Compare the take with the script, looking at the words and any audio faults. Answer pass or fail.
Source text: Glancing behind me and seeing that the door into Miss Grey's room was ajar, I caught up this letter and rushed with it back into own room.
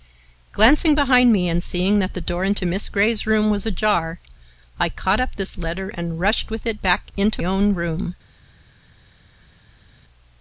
pass